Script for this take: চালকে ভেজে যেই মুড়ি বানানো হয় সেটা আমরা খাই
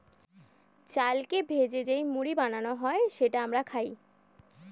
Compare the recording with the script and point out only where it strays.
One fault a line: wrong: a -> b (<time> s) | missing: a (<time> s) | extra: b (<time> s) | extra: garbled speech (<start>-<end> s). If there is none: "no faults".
no faults